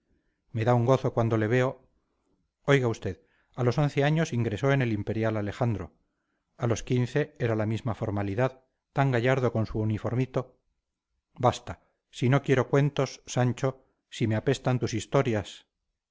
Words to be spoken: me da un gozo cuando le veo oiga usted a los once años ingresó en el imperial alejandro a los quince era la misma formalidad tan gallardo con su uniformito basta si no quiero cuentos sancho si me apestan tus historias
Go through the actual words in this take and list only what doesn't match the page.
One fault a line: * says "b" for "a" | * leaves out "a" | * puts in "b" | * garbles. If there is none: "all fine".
all fine